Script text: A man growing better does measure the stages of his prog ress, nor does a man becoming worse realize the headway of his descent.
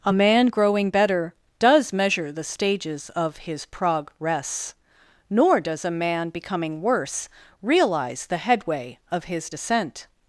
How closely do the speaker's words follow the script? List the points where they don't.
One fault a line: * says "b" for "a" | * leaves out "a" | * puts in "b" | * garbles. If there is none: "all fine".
all fine